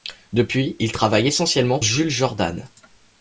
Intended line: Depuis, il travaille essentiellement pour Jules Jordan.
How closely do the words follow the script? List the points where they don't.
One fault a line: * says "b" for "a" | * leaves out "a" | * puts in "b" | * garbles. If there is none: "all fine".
* leaves out "pour"